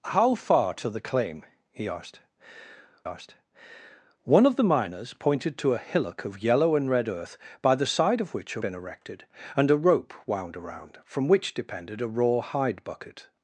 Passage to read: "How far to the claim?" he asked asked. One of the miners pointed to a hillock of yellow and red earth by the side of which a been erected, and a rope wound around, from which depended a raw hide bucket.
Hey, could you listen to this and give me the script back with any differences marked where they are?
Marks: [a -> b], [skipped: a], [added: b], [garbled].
"How far to the claim?" he asked asked. One of the miners pointed to a hillock of yellow and red earth by the side of which a been erected, and a rope wound around, from which depended a raw hide bucket.